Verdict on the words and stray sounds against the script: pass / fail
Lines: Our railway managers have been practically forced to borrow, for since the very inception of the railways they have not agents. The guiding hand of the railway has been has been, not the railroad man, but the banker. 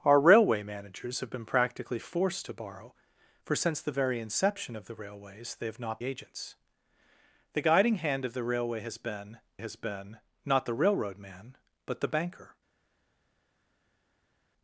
pass